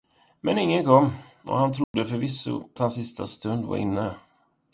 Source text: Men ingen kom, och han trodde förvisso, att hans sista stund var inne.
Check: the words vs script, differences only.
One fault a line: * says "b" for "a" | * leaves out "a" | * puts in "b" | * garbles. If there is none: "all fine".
* leaves out "att"